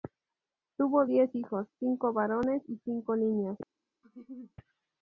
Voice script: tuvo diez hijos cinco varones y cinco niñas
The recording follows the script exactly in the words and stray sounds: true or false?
false